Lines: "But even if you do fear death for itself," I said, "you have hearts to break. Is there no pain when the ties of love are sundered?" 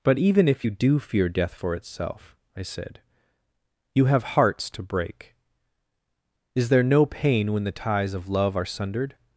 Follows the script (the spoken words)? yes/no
yes